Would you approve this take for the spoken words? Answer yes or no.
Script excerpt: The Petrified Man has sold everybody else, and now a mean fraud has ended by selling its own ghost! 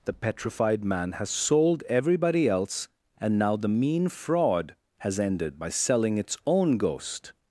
no